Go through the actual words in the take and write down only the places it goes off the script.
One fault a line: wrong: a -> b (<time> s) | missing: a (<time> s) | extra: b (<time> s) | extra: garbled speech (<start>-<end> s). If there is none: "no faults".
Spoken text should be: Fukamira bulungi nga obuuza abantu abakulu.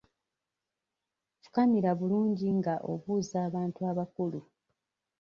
no faults